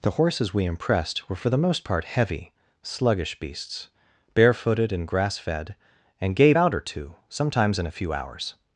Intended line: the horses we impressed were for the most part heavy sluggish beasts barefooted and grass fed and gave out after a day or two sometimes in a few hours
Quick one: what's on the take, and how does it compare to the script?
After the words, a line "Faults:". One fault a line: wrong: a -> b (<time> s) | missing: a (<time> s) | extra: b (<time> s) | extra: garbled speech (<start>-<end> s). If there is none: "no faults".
the horses we impressed were for the most part heavy sluggish beasts barefooted and grass fed and gave out or two sometimes in a few hours
Faults:
missing: after a day (6.7 s)